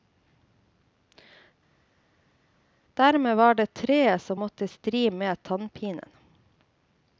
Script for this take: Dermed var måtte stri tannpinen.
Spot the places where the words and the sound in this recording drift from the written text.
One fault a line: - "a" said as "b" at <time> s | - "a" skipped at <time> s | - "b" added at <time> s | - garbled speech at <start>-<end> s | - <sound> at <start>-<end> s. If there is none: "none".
- "det treet som" added at 3.5 s
- "med" added at 5.1 s